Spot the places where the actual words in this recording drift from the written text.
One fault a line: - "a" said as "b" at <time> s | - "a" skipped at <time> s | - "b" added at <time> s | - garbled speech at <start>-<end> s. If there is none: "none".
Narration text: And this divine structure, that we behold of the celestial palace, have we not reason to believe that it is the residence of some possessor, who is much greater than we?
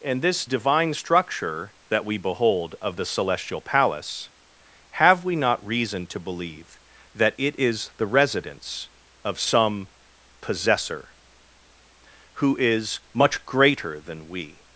none